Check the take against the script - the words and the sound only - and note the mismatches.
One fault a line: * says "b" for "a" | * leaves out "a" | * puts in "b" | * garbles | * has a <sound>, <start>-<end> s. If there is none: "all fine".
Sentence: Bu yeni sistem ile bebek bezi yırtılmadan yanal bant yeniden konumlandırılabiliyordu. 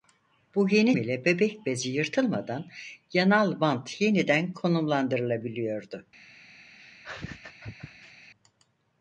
* leaves out "sistem"
* has a laugh, 6.7-8.3 s